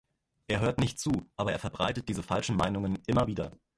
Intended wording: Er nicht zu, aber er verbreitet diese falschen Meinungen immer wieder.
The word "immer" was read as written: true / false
true